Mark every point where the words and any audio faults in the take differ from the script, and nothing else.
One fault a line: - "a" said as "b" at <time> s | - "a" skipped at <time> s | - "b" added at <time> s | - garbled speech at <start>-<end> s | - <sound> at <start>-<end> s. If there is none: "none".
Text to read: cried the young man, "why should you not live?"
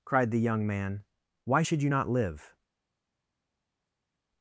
none